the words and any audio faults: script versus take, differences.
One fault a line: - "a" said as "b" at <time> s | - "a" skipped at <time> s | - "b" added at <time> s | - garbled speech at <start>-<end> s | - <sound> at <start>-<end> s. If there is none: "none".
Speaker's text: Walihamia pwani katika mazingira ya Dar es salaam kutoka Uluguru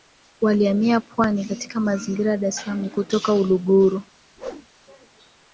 - whoosh at 4.4-4.7 s